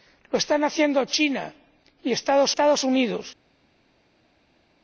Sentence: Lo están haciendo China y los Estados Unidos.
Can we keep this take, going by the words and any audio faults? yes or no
no